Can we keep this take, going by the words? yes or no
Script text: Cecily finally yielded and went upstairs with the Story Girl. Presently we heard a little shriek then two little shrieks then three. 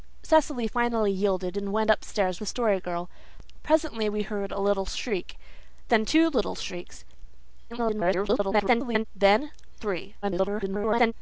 no